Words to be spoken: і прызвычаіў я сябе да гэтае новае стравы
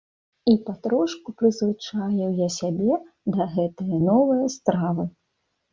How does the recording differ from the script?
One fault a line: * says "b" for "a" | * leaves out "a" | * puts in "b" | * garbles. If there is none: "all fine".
* puts in "патрошку"